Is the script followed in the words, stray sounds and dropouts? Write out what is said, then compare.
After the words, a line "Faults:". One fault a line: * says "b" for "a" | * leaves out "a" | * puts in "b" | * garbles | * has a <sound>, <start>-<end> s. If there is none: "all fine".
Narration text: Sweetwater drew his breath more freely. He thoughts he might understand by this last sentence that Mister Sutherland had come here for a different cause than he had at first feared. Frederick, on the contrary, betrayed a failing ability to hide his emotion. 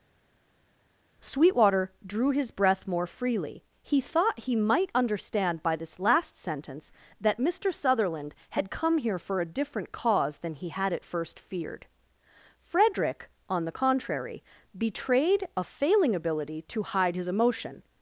Sweetwater drew his breath more freely. He thought he might understand by this last sentence that Mister Sutherland had come here for a different cause than he had at first feared. Frederick, on the contrary, betrayed a failing ability to hide his emotion.
Faults:
* says "thought" for "thoughts"